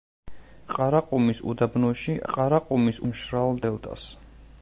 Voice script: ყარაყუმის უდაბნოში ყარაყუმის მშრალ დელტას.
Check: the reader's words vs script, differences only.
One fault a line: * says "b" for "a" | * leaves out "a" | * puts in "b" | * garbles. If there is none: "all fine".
all fine